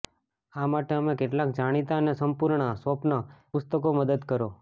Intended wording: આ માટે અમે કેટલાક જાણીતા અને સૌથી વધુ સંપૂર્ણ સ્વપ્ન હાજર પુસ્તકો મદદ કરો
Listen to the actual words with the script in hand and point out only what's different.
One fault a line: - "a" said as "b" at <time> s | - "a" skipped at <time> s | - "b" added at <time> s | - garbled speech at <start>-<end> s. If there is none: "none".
- "સૌથી વધુ" skipped at 2.1 s
- "હાજર" skipped at 3.2 s